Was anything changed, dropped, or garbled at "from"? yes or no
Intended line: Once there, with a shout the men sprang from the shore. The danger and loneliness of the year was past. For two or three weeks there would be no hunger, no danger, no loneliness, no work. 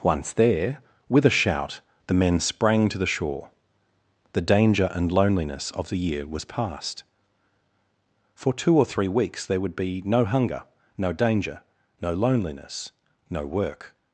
yes